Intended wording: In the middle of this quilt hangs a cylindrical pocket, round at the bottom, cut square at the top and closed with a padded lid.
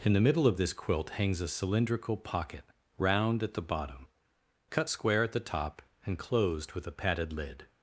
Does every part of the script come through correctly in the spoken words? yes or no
yes